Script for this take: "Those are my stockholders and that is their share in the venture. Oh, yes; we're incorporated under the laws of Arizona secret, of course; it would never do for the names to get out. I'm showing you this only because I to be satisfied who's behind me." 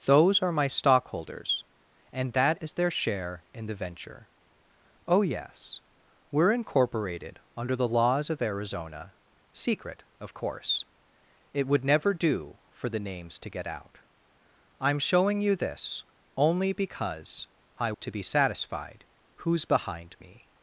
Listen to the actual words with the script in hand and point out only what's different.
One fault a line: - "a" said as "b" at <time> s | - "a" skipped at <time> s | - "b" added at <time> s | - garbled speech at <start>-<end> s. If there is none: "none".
none